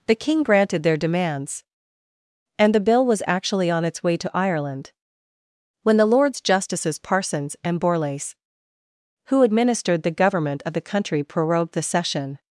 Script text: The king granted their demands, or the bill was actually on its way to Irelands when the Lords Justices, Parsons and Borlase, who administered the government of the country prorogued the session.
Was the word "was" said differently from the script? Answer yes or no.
no